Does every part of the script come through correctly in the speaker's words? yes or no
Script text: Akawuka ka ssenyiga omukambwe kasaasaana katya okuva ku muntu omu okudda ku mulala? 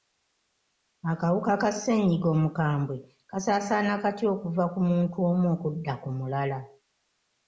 yes